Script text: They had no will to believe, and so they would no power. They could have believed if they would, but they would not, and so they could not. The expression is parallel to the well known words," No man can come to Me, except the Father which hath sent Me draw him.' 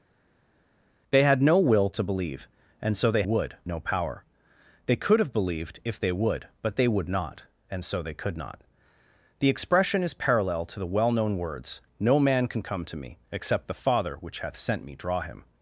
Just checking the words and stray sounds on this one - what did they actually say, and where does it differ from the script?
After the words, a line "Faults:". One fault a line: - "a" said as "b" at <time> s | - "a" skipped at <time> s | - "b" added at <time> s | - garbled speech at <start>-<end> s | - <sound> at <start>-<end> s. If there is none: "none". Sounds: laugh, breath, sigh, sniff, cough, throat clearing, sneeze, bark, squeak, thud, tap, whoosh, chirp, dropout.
They had no will to believe, and so they would no power. They could have believed if they would, but they would not, and so they could not. The expression is parallel to the well known words," No man can come to Me, except the Father which hath sent Me draw him.'
Faults:
none